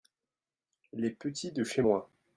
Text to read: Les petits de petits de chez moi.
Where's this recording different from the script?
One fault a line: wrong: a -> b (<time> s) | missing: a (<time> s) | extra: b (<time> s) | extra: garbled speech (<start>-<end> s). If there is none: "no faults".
missing: petits de (1.6 s)